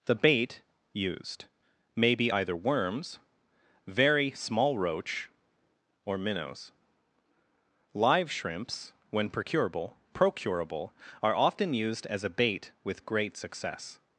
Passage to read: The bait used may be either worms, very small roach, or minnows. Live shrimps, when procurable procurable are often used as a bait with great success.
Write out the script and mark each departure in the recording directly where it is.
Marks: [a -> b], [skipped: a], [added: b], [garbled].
The bait used may be either worms, very small roach, or minnows. Live shrimps, when procurable procurable are often used as a bait with great success.